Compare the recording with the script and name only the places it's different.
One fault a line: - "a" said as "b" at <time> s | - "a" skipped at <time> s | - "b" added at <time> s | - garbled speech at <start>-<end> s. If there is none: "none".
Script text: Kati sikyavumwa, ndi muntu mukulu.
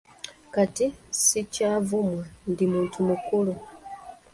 none